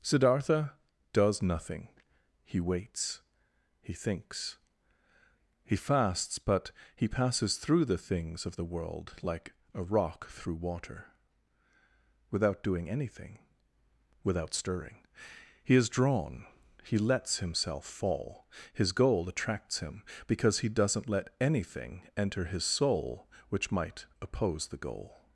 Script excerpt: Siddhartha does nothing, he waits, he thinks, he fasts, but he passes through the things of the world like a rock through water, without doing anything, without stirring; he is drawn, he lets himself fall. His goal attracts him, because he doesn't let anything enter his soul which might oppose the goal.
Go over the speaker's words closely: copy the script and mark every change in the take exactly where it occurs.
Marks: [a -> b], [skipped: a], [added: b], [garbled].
Siddhartha does nothing, he waits, he thinks, he fasts, but he passes through the things of the world like a rock through water, without doing anything, without stirring; he is drawn, he lets himself fall. His goal attracts him, because he doesn't let anything enter his soul which might oppose the goal.